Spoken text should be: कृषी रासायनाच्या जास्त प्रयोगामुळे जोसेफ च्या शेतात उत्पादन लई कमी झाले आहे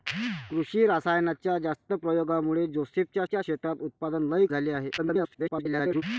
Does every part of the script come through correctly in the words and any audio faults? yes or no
no